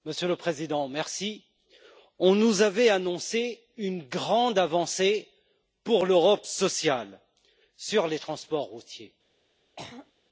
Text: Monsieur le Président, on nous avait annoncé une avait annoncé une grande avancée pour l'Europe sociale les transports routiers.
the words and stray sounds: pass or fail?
fail